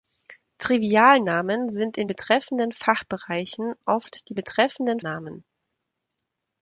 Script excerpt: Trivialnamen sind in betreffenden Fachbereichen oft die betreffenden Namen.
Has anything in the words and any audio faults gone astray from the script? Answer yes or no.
no